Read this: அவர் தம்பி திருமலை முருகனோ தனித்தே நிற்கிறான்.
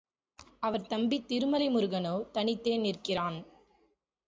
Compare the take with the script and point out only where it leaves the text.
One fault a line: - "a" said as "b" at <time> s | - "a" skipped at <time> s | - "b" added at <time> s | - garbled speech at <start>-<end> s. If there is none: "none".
none